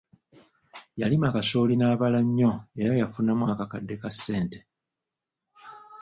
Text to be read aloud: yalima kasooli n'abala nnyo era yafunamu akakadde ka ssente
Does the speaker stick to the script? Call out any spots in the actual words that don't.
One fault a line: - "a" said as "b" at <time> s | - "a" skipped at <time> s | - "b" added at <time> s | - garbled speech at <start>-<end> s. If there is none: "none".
none